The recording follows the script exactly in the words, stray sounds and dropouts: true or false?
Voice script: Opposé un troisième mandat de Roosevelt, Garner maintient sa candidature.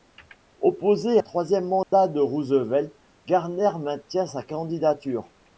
false